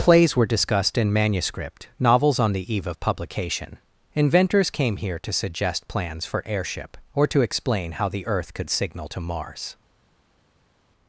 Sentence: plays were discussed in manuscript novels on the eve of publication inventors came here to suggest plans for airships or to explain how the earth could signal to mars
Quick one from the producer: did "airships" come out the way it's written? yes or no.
no